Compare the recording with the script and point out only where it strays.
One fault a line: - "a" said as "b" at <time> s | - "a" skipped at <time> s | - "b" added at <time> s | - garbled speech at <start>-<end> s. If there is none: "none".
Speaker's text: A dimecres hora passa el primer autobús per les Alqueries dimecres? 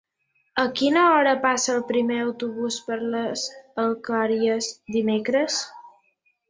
- "dimecres" said as "quina" at 0.8 s